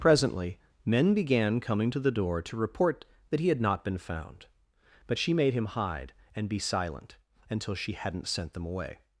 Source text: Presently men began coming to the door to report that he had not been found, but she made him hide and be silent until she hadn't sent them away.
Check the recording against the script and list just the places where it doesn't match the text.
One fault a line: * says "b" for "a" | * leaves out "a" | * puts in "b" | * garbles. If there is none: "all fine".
all fine